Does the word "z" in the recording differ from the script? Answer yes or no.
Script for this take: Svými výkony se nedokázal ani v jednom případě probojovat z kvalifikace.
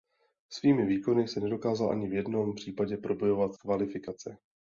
yes